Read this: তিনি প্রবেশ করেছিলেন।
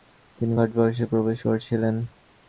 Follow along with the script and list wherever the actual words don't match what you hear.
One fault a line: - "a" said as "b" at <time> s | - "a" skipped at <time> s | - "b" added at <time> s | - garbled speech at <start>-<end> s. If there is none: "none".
- "ভারতবর্ষে" added at 0.5 s